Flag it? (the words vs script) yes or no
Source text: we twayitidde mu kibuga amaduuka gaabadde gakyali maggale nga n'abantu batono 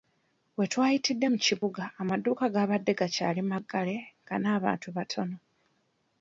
no